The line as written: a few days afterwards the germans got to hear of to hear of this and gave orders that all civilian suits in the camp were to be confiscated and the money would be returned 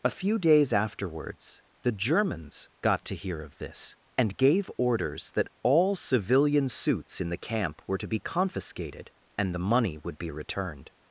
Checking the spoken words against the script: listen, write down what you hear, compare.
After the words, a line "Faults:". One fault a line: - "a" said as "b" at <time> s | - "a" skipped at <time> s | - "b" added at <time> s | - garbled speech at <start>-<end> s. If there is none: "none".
a few days afterwards the germans got to hear of this and gave orders that all civilian suits in the camp were to be confiscated and the money would be returned
Faults:
- "to hear of" skipped at 3.6 s